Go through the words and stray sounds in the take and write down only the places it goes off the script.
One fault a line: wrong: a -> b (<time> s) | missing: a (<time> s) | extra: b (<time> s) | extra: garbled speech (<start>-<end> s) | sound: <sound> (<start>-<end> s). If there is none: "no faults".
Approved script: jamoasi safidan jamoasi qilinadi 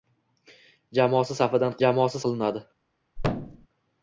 sound: thud (3.2-3.7 s)